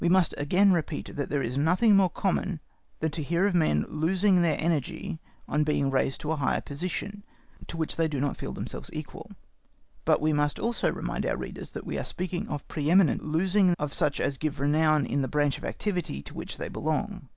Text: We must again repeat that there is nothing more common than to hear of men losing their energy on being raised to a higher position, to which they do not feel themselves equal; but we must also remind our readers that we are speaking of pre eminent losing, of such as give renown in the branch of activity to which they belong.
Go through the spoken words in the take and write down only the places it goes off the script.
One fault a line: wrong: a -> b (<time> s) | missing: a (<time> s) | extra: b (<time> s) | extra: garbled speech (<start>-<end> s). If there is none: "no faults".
no faults